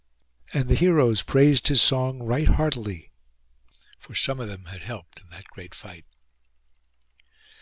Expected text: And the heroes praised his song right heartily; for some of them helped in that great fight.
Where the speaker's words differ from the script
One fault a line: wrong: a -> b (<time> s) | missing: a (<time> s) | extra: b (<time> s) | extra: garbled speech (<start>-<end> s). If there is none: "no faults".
extra: had (4.6 s)